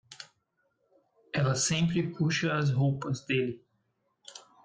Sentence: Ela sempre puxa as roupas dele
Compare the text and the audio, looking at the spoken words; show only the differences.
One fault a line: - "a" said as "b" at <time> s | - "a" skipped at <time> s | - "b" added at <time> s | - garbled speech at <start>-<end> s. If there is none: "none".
none